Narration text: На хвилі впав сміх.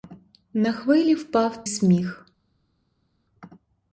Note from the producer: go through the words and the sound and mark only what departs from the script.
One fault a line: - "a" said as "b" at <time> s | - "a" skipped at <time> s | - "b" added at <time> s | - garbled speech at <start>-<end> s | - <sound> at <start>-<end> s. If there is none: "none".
none